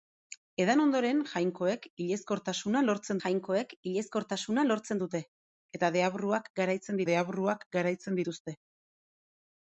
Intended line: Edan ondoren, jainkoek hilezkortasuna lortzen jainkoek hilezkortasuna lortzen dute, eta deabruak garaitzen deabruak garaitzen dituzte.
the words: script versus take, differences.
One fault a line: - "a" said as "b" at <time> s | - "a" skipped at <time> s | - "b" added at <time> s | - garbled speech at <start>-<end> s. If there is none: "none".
none